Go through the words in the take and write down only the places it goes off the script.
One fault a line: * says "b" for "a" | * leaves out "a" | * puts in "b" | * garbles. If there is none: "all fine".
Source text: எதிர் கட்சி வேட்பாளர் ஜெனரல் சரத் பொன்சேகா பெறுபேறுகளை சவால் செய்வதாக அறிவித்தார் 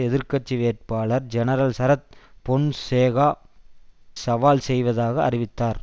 * leaves out "பெறுபேறுகளை"